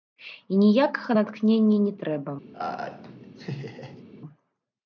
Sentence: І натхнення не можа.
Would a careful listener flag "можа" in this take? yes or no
yes